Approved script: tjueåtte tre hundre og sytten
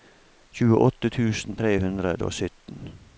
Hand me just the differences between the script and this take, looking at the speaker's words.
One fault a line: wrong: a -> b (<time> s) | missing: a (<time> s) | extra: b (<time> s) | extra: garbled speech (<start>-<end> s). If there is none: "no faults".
extra: tusen (1.2 s)